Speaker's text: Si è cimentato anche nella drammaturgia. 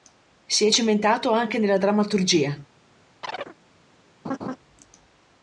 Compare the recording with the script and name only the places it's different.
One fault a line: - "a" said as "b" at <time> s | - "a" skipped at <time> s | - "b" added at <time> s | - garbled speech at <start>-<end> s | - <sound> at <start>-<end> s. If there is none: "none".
- chirp at 3.2-3.6 s
- laugh at 4.2-4.6 s